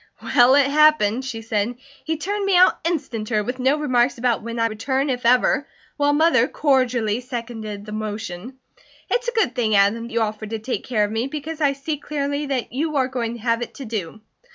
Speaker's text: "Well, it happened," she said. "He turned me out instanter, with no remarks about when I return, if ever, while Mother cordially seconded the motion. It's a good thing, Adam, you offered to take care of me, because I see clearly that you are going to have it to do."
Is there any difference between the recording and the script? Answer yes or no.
no